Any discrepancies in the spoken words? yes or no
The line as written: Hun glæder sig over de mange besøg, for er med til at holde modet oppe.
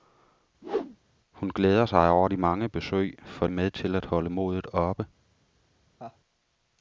no